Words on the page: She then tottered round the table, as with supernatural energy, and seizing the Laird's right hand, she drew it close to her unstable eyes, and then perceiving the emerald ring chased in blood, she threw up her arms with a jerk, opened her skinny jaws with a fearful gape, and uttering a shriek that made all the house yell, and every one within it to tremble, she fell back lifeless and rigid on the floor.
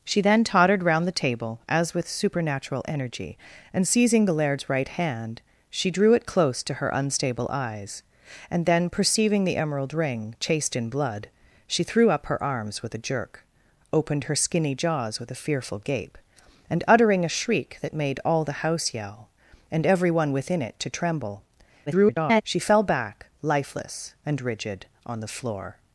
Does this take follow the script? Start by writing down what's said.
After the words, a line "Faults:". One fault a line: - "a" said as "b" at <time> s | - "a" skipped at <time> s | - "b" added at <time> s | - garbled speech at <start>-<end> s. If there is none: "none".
She then tottered round the table, as with supernatural energy, and seizing the Laird's right hand, she drew it close to her unstable eyes, and then perceiving the emerald ring chased in blood, she threw up her arms with a jerk, opened her skinny jaws with a fearful gape, and uttering a shriek that made all the house yell, and every one within it to tremble, [garbled] she fell back lifeless and rigid on the floor.
Faults:
- garbled speech at 21.9-22.4 s